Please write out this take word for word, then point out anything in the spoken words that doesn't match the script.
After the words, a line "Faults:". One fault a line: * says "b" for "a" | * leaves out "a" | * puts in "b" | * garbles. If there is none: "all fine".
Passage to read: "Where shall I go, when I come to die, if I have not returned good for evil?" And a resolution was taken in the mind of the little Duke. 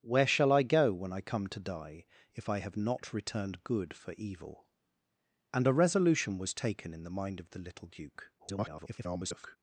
"Where shall I go, when I come to die, if I have not returned good for evil?" And a resolution was taken in the mind of the little Duke. [garbled]
Faults:
* garbles